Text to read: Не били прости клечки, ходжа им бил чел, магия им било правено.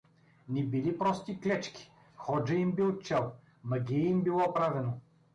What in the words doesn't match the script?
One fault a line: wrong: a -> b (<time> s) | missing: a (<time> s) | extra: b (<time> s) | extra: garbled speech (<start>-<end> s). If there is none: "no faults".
no faults